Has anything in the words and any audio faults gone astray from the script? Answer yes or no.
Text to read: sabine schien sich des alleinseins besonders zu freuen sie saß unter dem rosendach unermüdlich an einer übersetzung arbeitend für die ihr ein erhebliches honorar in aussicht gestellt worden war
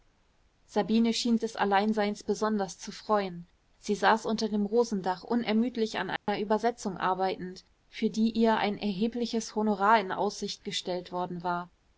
yes